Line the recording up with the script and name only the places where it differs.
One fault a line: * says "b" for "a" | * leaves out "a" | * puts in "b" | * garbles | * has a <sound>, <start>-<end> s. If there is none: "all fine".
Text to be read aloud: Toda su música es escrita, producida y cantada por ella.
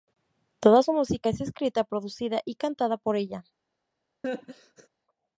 * has a laugh, 4.2-4.9 s